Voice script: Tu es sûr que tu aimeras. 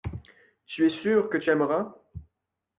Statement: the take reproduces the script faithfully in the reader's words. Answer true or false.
true